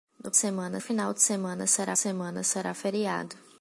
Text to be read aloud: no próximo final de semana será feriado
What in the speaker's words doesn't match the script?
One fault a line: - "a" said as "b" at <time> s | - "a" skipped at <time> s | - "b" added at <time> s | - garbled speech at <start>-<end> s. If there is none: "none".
- "próximo" said as "semana" at 0.4 s
- "semana será" added at 2.0 s